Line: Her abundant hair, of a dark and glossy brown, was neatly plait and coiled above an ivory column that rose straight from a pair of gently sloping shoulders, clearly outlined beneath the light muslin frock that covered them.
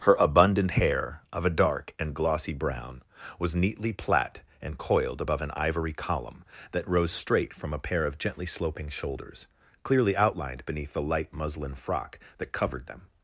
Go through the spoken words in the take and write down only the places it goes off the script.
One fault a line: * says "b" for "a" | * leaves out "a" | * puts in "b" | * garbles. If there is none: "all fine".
all fine